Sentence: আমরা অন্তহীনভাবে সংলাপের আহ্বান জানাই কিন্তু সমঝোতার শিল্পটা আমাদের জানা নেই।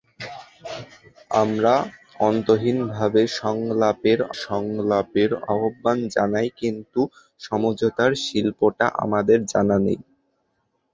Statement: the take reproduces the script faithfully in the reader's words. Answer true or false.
false